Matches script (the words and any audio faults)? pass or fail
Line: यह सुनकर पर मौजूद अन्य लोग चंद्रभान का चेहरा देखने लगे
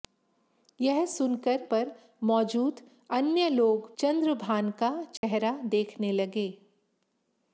fail